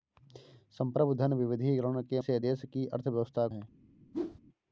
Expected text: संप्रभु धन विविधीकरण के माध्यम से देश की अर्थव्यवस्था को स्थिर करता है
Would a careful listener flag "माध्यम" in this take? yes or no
yes